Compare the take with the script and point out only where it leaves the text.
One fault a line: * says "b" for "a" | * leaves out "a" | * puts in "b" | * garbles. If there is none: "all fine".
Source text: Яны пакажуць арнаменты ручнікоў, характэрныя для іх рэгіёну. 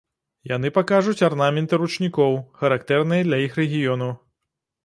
all fine